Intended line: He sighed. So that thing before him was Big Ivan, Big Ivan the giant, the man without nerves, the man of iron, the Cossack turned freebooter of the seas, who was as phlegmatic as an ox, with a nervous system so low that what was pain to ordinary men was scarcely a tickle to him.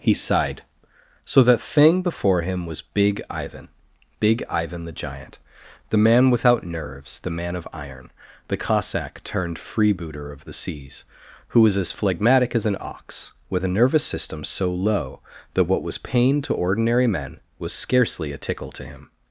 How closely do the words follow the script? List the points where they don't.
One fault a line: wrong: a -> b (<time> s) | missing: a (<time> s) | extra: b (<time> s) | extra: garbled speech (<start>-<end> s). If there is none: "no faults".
no faults